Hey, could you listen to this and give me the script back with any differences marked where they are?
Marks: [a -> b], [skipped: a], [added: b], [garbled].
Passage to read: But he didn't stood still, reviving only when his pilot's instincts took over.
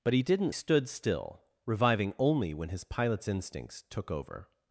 But he didn't stood still, reviving only when his pilot's instincts took over.